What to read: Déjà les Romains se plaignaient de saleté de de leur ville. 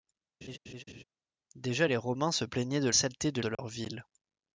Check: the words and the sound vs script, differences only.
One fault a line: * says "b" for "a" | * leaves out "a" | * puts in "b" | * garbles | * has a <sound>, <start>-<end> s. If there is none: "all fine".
* has a laugh, 0.4-1.0 s
* has a dropout, 3.5-3.6 s